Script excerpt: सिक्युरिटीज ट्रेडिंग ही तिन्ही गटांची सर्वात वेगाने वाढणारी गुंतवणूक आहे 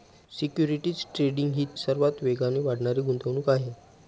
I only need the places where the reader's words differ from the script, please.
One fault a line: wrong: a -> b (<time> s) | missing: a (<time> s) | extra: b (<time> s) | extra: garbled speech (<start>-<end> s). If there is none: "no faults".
missing: तिन्ही गटांची (1.6 s)